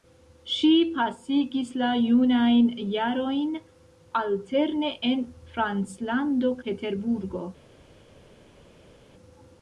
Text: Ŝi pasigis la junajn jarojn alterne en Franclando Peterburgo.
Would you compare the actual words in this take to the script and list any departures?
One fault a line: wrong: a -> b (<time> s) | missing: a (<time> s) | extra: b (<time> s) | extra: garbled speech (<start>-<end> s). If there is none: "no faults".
no faults